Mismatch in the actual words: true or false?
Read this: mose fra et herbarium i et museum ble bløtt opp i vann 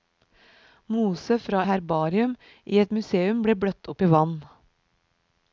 true